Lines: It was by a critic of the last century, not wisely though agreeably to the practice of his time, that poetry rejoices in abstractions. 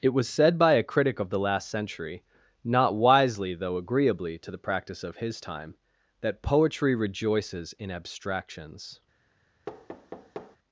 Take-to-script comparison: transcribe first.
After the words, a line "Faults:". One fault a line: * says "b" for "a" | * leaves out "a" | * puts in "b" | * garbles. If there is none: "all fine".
It was said by a critic of the last century, not wisely though agreeably to the practice of his time, that poetry rejoices in abstractions.
Faults:
* puts in "said"